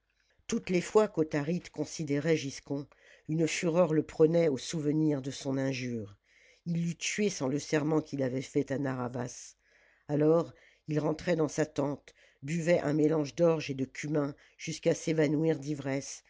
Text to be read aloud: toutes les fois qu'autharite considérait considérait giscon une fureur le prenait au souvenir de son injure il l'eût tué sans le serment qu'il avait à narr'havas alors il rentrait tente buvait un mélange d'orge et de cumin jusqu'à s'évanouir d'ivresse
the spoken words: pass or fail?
fail